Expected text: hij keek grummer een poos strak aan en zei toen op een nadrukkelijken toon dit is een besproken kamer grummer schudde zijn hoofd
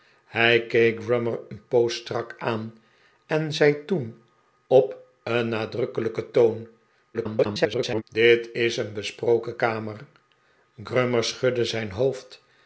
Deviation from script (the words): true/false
true